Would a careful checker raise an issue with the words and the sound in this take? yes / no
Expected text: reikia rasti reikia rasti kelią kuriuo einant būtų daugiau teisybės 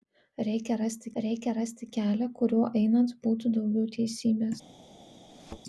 yes